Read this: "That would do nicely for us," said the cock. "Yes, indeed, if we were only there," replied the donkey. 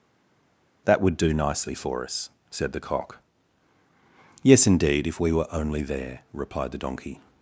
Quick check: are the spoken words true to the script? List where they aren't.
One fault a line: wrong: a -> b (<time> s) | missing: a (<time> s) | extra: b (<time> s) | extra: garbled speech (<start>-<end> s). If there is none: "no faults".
no faults